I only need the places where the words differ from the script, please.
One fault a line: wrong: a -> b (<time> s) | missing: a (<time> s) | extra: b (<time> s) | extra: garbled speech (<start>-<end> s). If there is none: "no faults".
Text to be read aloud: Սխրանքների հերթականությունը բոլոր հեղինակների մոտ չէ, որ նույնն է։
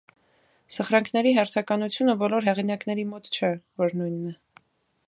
no faults